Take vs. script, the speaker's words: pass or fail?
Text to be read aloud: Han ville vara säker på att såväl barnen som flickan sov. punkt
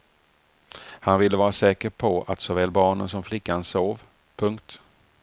pass